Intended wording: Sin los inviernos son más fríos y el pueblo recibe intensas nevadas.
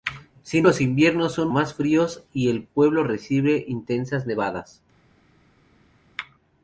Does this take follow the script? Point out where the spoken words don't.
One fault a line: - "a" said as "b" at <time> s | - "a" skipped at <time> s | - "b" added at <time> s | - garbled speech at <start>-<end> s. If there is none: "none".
none